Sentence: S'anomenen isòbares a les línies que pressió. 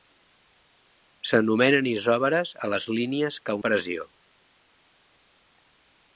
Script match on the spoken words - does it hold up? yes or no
yes